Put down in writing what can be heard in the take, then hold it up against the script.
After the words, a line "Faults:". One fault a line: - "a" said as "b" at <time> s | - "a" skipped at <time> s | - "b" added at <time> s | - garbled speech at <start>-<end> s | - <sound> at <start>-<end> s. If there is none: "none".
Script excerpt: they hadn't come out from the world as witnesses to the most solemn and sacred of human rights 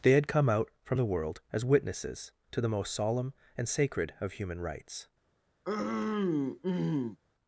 they had come out from the world as witnesses to the most solemn and sacred of human rights
Faults:
- "hadn't" said as "had" at 0.1 s
- throat clearing at 5.6-7.2 s